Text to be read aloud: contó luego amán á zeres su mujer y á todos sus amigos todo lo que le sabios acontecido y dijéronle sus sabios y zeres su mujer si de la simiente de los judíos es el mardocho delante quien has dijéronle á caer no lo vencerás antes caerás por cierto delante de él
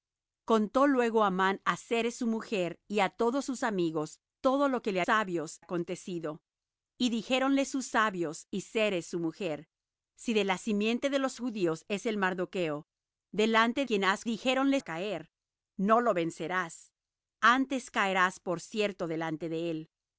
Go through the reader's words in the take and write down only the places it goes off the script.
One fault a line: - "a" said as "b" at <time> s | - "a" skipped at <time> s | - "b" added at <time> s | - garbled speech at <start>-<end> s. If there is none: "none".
none